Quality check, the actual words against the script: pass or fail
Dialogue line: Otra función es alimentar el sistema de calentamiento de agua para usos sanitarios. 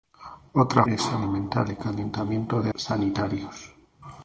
fail